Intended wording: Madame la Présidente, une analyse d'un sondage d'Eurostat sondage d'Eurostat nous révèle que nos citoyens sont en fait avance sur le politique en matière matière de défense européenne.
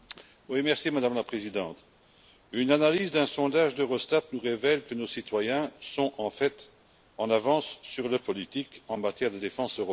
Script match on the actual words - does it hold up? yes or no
no